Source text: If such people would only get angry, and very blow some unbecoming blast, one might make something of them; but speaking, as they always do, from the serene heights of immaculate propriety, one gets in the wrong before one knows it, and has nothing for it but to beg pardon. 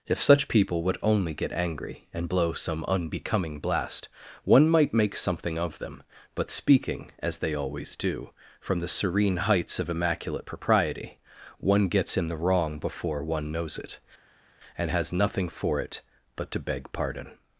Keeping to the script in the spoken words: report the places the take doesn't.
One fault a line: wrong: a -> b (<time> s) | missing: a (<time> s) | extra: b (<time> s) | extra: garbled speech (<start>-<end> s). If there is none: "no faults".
missing: very (2.3 s)